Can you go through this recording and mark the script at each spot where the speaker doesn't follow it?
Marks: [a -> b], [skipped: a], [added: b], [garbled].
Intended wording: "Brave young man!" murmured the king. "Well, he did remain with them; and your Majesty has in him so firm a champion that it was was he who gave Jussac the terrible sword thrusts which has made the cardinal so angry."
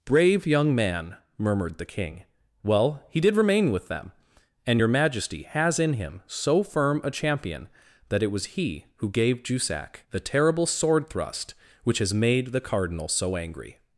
"Brave young man!" murmured the king. "Well, he did remain with them; and your Majesty has in him so firm a champion that it was [skipped: was] he who gave Jussac the terrible sword [thrusts -> thrust] which has made the cardinal so angry."